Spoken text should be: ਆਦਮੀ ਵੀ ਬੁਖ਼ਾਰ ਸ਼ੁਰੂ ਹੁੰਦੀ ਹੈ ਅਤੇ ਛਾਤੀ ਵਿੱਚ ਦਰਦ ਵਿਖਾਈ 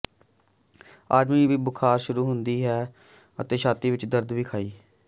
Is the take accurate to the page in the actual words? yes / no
yes